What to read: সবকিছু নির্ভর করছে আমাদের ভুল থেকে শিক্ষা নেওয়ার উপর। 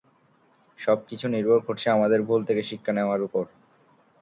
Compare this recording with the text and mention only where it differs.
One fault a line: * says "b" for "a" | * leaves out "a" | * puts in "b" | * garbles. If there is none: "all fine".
all fine